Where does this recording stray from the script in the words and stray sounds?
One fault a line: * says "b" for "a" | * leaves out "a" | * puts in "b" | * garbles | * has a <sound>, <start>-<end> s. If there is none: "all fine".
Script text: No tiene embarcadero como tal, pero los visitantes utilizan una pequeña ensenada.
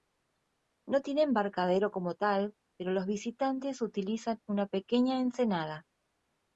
all fine